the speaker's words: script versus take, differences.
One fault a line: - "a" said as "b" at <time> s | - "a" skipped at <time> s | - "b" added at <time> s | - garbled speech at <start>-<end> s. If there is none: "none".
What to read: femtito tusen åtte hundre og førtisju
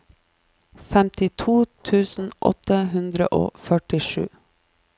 none